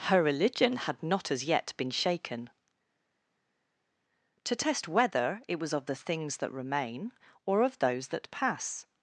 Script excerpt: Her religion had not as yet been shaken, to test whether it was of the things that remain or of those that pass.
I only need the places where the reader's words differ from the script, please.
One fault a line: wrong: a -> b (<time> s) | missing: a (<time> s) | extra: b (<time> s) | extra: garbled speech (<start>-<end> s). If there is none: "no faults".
no faults